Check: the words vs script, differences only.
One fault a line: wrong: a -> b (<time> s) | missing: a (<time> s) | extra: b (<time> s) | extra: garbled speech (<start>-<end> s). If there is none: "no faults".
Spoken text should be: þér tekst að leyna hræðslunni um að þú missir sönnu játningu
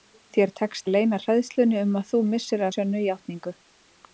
no faults